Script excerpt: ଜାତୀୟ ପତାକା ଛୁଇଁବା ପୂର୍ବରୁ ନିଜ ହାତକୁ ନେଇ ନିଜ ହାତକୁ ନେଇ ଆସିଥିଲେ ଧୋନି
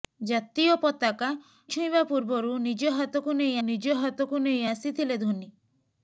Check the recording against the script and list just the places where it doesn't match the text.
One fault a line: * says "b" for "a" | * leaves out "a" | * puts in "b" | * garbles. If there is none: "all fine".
all fine